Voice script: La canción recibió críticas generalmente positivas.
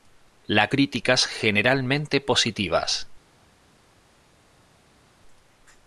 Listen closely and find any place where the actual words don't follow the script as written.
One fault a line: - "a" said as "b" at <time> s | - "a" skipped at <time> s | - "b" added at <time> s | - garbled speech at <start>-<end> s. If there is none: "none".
- "canción recibió" skipped at 0.7 s